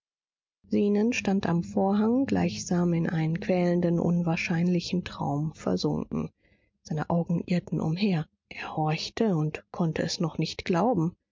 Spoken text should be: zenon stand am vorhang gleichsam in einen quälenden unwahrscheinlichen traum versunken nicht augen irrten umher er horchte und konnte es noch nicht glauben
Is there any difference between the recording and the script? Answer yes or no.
yes